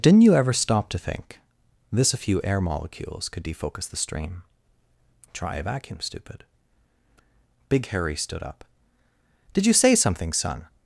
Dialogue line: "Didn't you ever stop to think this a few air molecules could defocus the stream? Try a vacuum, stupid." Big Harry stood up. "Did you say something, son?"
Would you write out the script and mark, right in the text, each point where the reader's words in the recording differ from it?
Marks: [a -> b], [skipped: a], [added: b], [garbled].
"Didn't you ever stop to think this a few air molecules could defocus the stream? Try a vacuum, stupid." Big Harry stood up. "Did you say something, son?"